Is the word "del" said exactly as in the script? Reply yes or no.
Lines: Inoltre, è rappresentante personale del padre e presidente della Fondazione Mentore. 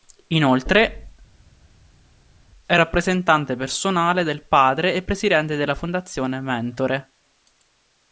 yes